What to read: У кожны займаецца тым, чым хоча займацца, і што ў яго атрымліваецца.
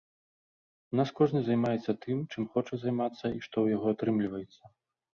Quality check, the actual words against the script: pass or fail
fail